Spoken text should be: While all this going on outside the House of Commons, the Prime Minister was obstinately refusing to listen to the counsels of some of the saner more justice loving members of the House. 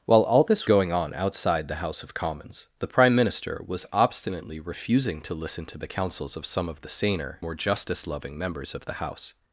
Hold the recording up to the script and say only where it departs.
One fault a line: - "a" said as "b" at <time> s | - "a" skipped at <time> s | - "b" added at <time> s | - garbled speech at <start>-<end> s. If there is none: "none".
none